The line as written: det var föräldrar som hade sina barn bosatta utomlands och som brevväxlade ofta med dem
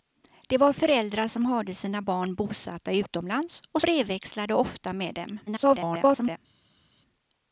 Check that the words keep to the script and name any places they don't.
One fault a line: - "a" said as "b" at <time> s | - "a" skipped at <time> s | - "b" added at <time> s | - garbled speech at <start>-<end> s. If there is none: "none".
- "som" skipped at 3.8 s
- garbled speech at 5.5-6.4 s